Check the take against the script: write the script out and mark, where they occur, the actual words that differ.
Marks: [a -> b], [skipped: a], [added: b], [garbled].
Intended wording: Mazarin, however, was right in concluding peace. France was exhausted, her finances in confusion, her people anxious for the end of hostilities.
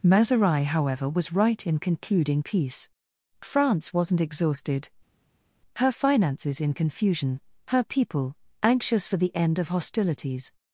Mazarin, however, was right in concluding peace. France [was -> wasn't] exhausted, her finances in confusion, her people anxious for the end of hostilities.